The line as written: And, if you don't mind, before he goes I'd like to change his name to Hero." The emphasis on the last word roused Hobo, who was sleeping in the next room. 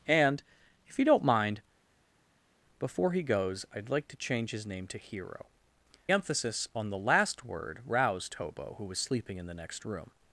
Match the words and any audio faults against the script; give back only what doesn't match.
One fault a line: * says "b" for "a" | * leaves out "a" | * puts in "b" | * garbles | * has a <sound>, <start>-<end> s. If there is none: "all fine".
* leaves out "The"